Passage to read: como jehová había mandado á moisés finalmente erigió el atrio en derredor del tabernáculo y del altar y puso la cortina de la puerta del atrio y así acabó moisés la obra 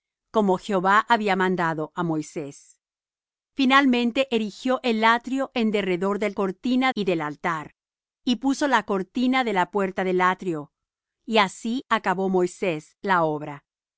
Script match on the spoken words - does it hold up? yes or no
no